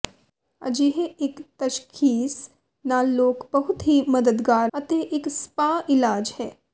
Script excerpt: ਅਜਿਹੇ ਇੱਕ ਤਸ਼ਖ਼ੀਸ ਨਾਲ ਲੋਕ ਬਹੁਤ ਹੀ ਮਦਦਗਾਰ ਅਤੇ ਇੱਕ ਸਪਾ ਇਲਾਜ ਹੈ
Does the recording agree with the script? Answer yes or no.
yes